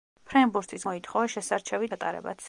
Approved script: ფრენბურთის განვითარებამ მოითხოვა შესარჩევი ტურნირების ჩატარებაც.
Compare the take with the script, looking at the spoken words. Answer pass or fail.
fail